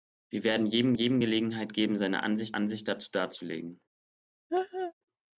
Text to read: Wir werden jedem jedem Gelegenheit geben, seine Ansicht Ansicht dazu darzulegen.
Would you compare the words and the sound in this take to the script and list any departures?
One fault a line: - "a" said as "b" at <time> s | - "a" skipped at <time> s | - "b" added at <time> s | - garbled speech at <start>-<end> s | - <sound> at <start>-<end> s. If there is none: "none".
- laugh at 4.5-4.9 s